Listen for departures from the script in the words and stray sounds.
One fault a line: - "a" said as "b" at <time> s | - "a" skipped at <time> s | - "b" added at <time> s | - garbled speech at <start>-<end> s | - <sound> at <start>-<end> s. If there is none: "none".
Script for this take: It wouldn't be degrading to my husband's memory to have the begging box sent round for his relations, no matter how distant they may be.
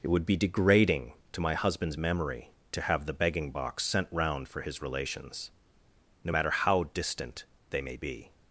- "wouldn't" said as "would" at 0.1 s